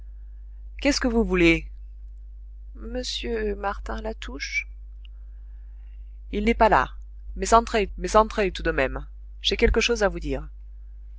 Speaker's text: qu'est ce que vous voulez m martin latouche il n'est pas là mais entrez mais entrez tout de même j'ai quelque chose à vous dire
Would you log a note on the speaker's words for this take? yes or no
no